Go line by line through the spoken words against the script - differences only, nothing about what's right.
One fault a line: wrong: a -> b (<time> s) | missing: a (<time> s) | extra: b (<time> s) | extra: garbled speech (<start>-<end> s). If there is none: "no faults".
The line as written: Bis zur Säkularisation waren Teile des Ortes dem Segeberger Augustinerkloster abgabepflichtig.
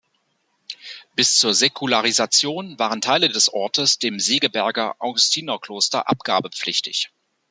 no faults